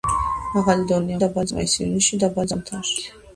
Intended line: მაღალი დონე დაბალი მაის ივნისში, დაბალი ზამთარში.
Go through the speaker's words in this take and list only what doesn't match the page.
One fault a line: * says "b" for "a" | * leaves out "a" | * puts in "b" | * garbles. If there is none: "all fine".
all fine